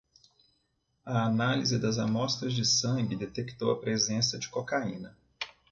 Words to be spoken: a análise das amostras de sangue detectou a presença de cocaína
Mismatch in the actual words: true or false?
false